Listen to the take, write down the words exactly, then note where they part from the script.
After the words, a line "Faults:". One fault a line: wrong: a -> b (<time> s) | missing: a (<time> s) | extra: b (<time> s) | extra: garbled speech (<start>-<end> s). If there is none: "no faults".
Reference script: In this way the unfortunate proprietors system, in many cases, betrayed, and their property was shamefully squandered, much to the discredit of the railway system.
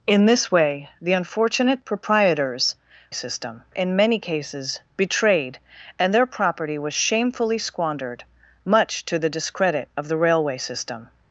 In this way the unfortunate proprietors system, in many cases, betrayed, and their property was shamefully squandered, much to the discredit of the railway system.
Faults:
no faults